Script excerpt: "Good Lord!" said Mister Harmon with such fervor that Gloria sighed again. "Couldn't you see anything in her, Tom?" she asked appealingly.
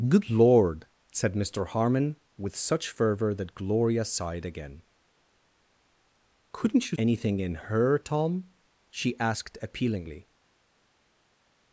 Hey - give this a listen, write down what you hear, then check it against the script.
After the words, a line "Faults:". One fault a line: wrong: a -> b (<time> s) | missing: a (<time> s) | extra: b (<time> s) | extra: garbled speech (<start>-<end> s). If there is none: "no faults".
"Good Lord!" said Mister Harmon with such fervor that Gloria sighed again. "Couldn't you anything in her, Tom?" she asked appealingly.
Faults:
missing: see (7.0 s)